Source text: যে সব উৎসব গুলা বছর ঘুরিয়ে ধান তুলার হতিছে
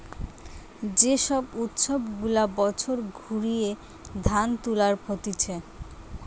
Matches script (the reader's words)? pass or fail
pass